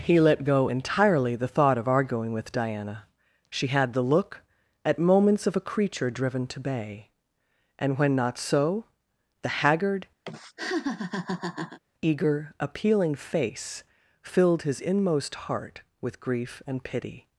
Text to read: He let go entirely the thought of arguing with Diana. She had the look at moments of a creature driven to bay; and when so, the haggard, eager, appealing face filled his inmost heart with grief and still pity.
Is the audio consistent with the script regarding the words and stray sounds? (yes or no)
no